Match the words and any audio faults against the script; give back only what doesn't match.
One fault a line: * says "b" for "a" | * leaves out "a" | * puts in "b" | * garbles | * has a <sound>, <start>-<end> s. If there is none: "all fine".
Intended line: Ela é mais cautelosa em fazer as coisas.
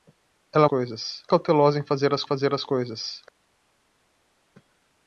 * says "coisas" for "mais"
* puts in "fazer as"